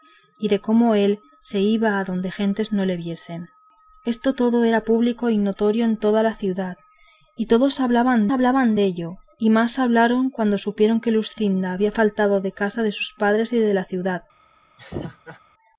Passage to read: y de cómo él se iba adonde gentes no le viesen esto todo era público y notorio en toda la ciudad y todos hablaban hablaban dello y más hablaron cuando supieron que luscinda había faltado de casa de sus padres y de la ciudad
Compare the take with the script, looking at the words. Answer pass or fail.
pass